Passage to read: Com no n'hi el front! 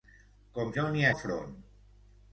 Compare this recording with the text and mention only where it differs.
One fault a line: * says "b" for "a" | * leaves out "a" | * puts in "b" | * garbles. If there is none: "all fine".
all fine